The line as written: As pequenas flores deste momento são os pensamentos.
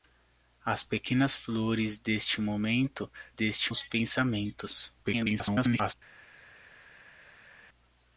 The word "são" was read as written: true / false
false